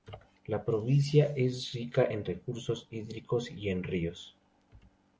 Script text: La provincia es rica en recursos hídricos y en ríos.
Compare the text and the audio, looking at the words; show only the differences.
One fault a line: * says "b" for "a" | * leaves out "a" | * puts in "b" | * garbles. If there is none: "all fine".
all fine